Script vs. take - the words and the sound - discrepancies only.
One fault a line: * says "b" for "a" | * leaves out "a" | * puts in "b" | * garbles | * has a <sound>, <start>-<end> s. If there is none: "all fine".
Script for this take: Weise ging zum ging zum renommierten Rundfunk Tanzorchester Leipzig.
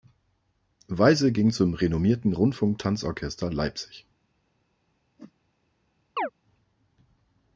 * leaves out "ging zum"
* has a whoosh, 5.2-5.3 s
* has a chirp, 6.2-6.3 s